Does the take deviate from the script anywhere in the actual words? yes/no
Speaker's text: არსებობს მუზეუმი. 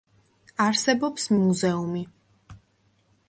no